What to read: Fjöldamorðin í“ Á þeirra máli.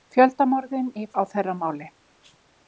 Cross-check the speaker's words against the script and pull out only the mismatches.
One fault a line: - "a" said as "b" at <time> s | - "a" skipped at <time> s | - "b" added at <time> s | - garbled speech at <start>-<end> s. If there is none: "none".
none